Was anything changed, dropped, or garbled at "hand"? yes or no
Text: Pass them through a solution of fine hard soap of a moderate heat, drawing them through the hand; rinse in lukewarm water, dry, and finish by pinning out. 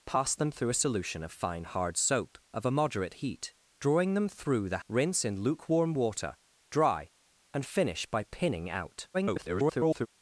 yes